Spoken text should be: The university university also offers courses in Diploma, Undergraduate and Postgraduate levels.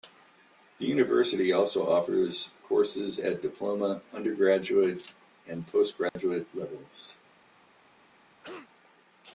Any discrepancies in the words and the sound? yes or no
yes